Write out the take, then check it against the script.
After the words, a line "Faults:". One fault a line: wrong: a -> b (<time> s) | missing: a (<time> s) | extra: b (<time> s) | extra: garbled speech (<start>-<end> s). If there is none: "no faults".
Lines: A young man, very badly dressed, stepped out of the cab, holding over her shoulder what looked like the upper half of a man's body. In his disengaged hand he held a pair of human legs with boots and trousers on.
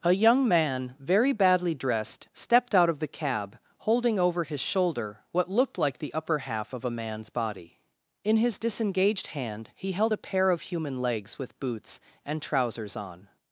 A young man, very badly dressed, stepped out of the cab, holding over his shoulder what looked like the upper half of a man's body. In his disengaged hand he held a pair of human legs with boots and trousers on.
Faults:
wrong: her -> his (4.4 s)